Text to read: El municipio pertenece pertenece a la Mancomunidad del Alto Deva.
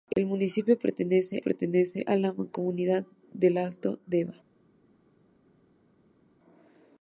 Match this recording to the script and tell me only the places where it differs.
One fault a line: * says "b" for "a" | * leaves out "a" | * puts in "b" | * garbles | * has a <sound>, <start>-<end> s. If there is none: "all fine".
all fine